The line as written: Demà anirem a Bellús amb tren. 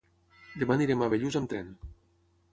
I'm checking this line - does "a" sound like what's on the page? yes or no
yes